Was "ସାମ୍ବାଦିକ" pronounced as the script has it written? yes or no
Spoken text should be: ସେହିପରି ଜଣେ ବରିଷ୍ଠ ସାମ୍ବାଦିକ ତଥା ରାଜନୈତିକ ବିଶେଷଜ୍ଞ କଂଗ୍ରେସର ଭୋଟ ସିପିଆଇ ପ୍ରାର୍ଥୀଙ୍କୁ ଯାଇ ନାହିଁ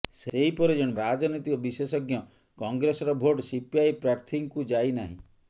no